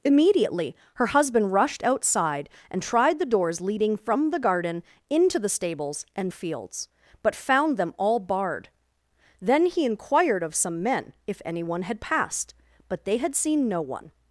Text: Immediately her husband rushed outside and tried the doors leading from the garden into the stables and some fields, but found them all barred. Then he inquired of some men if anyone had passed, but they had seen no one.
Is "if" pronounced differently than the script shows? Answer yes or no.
no